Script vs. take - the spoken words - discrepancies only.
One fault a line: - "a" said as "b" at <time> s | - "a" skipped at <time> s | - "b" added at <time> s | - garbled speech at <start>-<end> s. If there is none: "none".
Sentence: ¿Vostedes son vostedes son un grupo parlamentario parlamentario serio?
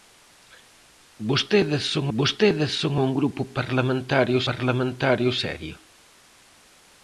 none